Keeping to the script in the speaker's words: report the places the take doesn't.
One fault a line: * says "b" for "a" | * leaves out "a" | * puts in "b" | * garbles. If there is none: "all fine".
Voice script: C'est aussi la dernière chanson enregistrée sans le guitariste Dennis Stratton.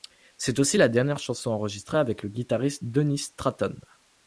* says "avec" for "sans"